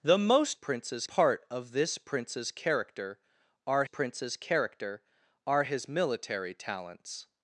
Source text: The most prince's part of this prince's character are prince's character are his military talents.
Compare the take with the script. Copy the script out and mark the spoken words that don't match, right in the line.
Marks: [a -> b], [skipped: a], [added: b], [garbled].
The most prince's part of this prince's character are prince's character are his military talents.